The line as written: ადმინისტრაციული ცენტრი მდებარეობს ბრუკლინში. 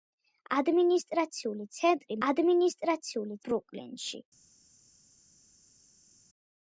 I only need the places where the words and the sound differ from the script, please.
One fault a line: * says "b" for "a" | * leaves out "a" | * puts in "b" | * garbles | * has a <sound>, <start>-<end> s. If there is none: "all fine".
* says "ადმინისტრაციული" for "მდებარეობს"